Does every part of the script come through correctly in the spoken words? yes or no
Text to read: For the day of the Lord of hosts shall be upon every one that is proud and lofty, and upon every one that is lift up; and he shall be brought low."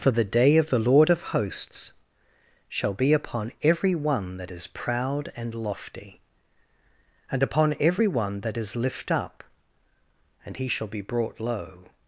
yes